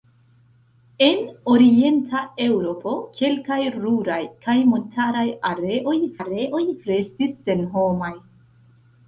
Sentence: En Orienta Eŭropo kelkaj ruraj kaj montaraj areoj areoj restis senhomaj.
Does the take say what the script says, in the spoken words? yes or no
yes